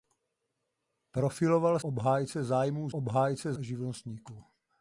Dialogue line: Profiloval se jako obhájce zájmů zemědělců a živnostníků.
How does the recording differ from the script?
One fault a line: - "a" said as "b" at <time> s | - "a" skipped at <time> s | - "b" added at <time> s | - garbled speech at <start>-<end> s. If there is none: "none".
- "se jako" skipped at 1.8 s
- "zemědělců" said as "obhájce" at 2.9 s